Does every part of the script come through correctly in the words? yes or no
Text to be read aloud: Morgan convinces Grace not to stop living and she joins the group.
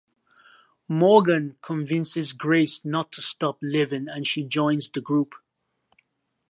yes